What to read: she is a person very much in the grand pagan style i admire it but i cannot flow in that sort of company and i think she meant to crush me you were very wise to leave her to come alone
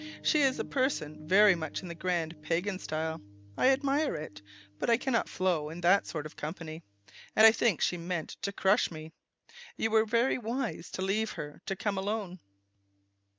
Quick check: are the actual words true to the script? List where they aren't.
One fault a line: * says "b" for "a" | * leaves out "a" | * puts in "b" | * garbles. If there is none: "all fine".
all fine